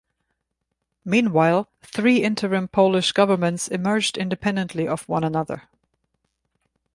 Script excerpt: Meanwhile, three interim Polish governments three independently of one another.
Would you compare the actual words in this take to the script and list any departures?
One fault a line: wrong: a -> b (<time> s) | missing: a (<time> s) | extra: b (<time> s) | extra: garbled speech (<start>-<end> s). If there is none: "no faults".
wrong: three -> emerged (3.7 s)